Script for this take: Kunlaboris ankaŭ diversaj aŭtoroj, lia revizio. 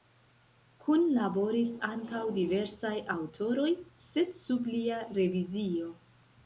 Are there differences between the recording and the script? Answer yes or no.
yes